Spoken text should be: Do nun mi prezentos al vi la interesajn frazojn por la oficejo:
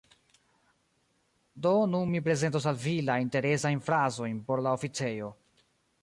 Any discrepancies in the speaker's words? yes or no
no